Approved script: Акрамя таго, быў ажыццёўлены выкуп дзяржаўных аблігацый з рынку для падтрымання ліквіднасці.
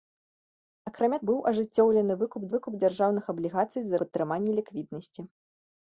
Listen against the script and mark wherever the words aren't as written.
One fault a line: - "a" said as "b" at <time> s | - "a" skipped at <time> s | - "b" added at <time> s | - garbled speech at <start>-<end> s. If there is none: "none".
- "таго" skipped at 1.2 s
- "выкуп" added at 2.5 s
- "рынку для" skipped at 4.0 s